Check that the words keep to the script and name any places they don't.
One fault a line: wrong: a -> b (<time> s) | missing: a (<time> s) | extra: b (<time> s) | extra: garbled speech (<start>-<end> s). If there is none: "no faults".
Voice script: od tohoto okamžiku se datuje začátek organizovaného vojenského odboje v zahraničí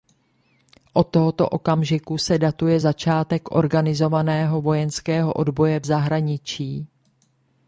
no faults